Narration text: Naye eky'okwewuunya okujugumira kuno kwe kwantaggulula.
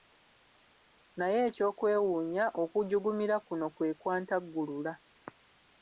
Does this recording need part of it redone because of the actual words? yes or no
no